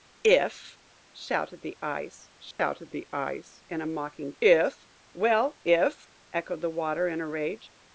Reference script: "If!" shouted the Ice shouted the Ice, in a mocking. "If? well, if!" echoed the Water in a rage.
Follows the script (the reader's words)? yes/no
yes